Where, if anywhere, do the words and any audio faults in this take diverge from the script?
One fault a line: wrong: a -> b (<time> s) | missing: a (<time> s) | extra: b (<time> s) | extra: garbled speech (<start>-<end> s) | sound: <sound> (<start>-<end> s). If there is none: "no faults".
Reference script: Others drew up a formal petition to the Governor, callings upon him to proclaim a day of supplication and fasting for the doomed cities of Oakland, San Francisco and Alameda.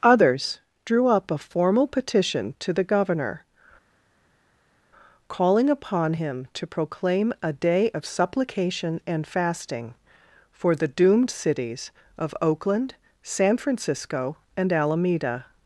wrong: callings -> calling (5.3 s)